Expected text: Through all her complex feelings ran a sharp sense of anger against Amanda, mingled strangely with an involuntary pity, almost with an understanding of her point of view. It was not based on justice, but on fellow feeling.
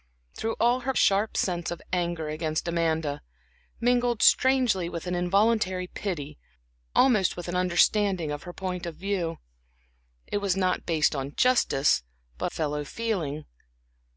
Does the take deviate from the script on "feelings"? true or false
true